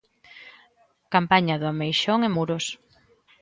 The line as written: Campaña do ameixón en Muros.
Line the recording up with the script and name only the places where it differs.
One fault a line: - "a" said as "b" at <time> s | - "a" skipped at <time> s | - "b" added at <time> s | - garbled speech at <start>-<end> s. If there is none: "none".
none